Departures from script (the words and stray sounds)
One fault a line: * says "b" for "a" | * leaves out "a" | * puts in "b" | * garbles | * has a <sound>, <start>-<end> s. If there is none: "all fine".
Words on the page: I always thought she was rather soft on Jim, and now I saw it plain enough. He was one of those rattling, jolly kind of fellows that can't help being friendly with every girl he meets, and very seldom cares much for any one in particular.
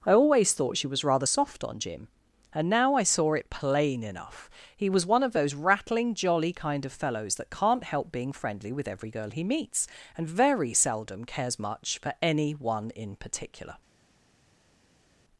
all fine